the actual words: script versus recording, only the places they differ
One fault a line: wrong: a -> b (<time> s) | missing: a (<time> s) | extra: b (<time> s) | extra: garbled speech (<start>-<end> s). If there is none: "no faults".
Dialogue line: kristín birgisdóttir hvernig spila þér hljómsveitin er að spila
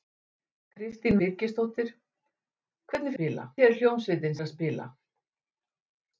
no faults